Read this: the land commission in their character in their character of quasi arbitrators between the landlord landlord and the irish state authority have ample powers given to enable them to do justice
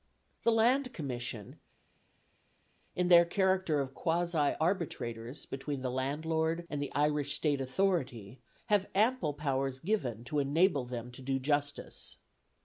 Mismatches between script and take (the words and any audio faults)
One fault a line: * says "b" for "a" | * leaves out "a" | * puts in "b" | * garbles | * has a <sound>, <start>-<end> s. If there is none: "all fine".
* leaves out "in their character"
* leaves out "landlord"